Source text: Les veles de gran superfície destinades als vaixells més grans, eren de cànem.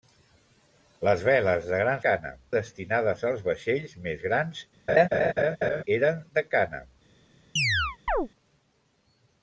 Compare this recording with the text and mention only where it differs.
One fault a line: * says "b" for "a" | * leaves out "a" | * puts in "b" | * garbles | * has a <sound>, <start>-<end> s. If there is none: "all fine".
* says "cànem" for "superfície"
* has a laugh, 4.9-5.8 s
* has a chirp, 7.6-8.3 s